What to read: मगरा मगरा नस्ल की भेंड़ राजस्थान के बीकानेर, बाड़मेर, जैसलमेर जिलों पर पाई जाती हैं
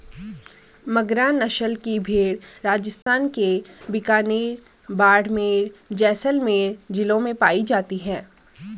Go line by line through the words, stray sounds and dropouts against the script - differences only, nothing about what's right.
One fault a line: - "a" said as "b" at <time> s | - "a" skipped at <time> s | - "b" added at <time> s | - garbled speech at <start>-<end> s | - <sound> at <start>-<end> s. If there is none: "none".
- "मगरा" skipped at 1.3 s
- dropout at 3.0-3.1 s
- "पर" said as "में" at 7.2 s